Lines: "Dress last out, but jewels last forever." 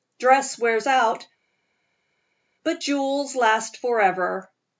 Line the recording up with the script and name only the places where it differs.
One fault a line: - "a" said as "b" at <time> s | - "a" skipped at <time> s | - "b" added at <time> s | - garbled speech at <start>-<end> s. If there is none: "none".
- "last" said as "wears" at 0.6 s